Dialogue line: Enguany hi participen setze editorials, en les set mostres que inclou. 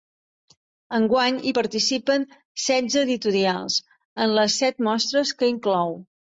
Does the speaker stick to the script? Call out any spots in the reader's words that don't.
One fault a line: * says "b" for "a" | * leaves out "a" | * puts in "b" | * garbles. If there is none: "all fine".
all fine